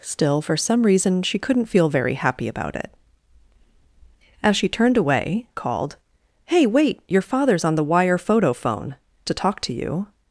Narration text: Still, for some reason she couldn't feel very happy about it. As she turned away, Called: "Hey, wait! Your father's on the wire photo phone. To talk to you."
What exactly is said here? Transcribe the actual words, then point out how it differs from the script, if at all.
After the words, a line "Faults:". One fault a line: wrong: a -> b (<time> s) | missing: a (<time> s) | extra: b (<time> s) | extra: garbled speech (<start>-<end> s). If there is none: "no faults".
Still, for some reason she couldn't feel very happy about it. As she turned away, Called: "Hey, wait! Your father's on the wire photo phone. To talk to you."
Faults:
no faults